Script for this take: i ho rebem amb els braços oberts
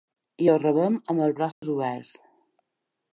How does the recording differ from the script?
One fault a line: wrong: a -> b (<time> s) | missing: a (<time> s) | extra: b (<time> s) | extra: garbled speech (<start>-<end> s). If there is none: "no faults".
no faults